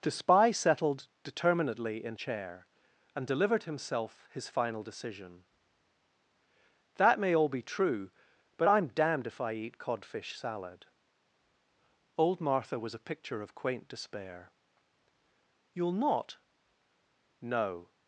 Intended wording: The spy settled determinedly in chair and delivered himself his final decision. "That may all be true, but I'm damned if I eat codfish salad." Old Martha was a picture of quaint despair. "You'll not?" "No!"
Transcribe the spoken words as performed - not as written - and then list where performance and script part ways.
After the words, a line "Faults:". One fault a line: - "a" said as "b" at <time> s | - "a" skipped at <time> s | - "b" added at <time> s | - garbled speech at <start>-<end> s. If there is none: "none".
The spy settled determinedly in chair and delivered himself his final decision. "That may all be true, but I'm damned if I eat codfish salad." Old Martha was a picture of quaint despair. "You'll not?" "No!"
Faults:
none